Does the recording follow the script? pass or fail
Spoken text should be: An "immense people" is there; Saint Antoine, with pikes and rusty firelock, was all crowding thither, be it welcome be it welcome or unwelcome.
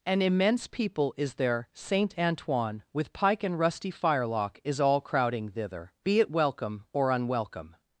fail